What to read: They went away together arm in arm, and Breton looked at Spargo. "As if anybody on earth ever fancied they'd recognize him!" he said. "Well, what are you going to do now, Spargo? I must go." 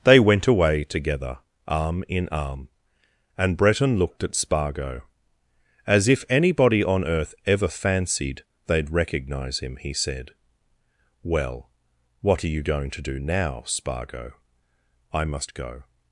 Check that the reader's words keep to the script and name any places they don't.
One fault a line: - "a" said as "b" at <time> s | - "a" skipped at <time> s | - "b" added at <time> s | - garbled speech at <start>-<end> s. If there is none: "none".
none